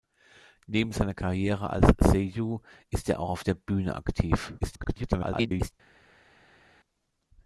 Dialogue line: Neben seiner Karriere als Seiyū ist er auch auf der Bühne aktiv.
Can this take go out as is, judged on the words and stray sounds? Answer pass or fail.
fail